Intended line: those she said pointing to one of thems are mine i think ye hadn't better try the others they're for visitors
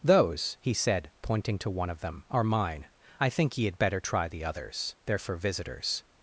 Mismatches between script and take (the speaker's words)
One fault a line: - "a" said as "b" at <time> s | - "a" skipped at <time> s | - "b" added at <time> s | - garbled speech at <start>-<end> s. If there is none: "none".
- "she" said as "he" at 0.6 s
- "thems" said as "them" at 2.0 s
- "hadn't" said as "had" at 3.6 s